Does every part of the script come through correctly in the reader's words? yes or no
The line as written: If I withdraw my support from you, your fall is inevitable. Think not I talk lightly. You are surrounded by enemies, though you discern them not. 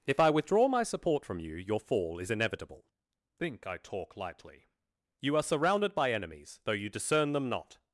no